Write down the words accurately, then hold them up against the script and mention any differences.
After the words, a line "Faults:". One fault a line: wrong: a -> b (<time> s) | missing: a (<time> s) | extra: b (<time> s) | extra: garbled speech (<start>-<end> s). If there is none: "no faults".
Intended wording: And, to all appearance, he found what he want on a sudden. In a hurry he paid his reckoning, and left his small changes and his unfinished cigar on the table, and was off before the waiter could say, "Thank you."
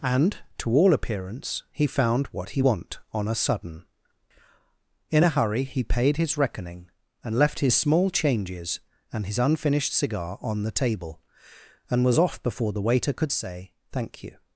And, to all appearance, he found what he want on a sudden. In a hurry he paid his reckoning, and left his small changes and his unfinished cigar on the table, and was off before the waiter could say, "Thank you."
Faults:
no faults